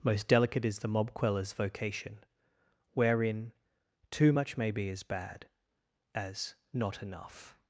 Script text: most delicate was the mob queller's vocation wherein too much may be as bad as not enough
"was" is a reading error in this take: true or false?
true